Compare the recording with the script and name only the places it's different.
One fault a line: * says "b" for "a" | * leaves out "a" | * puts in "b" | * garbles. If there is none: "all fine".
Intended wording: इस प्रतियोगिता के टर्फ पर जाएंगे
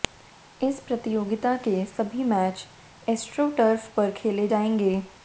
* puts in "सभी मैच एस्ट्रो"
* puts in "खेले"